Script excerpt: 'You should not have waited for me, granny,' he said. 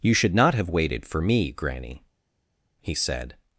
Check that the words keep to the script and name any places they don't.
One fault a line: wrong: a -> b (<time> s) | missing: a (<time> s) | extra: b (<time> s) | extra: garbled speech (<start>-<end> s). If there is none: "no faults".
no faults